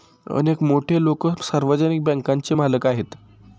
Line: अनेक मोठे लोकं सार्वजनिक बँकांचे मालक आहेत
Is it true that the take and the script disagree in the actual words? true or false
false